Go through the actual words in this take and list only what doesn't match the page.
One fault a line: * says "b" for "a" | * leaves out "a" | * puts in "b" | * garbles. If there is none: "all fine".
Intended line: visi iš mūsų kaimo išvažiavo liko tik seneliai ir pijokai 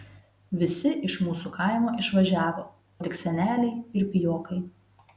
* leaves out "liko"